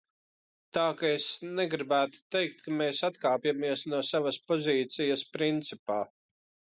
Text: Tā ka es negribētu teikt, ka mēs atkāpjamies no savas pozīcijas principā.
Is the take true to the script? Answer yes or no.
yes